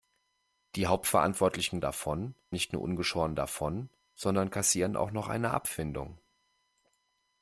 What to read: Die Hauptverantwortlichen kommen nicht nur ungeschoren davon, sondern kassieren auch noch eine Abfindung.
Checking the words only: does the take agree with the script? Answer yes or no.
no